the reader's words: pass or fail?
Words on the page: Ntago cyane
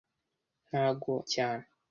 pass